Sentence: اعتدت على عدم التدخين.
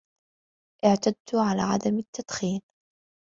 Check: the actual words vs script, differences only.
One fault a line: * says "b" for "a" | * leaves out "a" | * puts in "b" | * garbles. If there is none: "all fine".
all fine